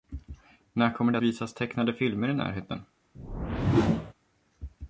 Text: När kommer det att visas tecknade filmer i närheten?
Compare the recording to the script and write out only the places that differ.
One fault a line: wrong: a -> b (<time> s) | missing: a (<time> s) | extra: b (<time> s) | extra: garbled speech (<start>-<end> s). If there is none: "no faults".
missing: att (1.2 s)